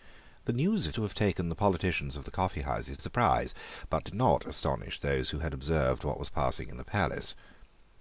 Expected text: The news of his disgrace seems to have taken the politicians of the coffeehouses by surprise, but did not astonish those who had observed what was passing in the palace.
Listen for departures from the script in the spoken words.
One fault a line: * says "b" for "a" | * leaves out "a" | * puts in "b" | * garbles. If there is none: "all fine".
* leaves out "his disgrace seems"
* leaves out "by"